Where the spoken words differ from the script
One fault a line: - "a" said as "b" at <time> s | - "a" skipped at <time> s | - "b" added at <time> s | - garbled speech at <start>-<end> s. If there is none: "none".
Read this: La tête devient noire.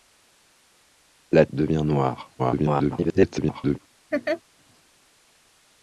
- "tête" skipped at 1.4 s
- garbled speech at 2.4-3.8 s